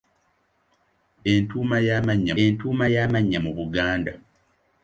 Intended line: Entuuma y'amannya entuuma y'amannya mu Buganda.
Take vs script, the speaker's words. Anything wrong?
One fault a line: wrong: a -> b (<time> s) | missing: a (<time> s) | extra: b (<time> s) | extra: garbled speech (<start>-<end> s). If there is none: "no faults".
no faults